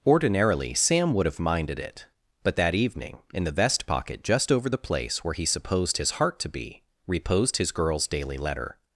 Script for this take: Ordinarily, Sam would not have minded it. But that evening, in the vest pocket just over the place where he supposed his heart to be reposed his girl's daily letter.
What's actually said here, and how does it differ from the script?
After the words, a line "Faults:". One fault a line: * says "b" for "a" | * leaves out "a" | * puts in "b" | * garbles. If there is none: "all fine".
Ordinarily, Sam would have minded it. But that evening, in the vest pocket just over the place where he supposed his heart to be reposed his girl's daily letter.
Faults:
* leaves out "not"